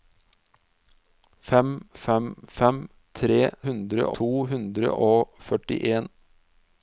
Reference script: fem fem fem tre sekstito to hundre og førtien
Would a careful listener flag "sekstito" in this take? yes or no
yes